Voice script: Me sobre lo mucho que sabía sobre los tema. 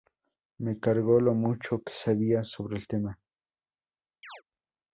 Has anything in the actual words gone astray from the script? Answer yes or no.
yes